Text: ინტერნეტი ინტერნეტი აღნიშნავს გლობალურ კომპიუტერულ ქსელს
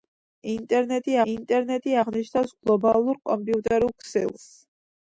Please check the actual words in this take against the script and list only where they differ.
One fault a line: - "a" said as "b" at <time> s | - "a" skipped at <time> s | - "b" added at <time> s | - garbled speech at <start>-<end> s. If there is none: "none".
none